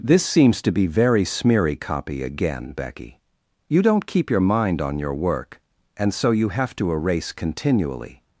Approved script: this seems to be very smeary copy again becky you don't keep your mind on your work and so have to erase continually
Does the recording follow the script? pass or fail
fail